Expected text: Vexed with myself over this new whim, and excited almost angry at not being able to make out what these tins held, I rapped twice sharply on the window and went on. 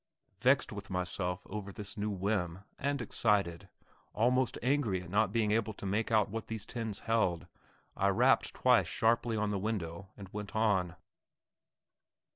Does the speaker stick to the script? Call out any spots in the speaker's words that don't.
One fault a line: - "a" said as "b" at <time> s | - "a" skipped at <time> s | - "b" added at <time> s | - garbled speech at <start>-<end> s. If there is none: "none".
none